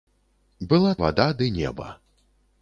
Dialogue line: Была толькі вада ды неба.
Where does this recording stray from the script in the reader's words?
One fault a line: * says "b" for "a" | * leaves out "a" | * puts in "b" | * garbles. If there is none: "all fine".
* leaves out "толькі"